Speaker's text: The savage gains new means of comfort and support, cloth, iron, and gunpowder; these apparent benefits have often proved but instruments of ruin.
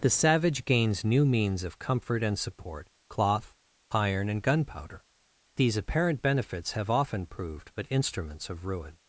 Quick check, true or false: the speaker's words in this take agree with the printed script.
true